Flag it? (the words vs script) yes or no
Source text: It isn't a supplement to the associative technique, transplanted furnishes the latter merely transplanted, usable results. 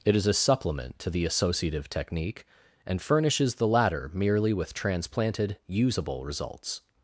yes